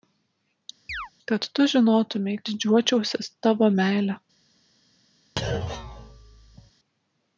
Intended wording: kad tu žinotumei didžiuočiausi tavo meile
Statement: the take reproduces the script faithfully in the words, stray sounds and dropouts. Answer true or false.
false